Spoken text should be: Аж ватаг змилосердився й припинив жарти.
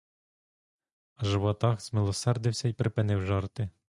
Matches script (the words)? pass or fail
pass